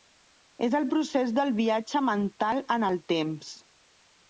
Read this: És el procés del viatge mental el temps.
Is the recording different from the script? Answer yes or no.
yes